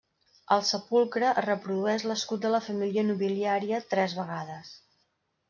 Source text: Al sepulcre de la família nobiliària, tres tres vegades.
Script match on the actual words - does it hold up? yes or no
no